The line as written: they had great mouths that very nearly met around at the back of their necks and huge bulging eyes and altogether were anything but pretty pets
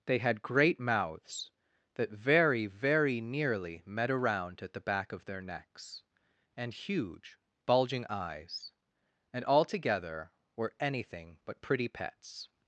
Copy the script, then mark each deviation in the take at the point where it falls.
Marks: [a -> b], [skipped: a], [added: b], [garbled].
they had great mouths that very [added: very] nearly met around at the back of their necks and huge bulging eyes and altogether were anything but pretty pets